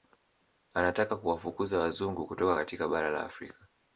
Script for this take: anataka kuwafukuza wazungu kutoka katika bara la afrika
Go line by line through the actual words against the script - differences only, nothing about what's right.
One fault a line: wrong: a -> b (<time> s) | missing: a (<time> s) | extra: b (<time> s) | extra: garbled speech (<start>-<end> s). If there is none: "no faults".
no faults